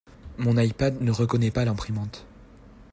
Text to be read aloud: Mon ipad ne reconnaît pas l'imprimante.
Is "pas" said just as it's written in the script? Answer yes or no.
yes